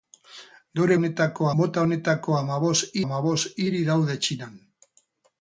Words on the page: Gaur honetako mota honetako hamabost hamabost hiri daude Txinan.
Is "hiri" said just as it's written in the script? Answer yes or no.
yes